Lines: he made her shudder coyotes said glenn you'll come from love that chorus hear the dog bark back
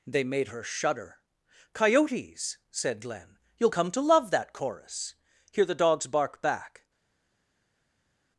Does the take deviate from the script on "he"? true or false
true